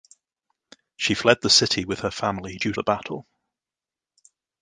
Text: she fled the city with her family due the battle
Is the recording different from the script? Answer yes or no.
no